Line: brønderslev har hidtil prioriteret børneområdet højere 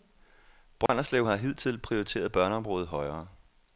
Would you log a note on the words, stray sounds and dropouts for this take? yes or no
yes